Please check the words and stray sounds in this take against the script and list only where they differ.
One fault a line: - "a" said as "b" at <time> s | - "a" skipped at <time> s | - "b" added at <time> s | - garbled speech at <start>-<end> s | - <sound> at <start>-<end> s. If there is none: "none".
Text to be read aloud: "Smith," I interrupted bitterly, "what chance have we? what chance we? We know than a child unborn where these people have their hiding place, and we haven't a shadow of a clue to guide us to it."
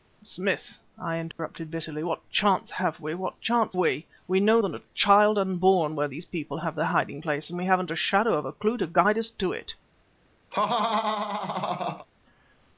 - dropout at 1.3-1.4 s
- laugh at 10.5-12.1 s